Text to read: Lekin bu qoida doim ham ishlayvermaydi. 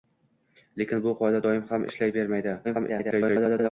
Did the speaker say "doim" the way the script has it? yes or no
yes